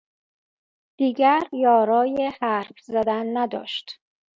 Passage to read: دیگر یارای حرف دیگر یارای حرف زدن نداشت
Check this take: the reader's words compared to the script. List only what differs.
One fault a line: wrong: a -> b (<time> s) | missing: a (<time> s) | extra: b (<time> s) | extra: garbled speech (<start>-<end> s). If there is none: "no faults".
missing: دیگر یارای حرف (2.8 s)